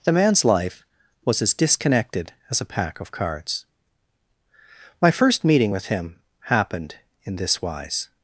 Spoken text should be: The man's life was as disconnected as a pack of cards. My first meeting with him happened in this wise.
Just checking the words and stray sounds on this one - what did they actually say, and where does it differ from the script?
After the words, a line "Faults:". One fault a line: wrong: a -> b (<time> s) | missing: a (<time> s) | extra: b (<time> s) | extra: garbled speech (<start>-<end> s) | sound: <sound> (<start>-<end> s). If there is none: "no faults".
The man's life was as disconnected as a pack of cards. My first meeting with him happened in this wise.
Faults:
no faults